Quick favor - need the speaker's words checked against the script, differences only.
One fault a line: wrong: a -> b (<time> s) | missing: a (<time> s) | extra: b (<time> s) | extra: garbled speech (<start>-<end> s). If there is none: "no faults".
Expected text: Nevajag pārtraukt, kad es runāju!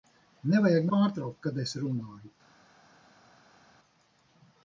no faults